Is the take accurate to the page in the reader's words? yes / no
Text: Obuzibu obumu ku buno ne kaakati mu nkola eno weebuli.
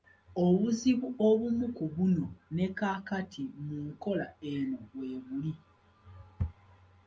yes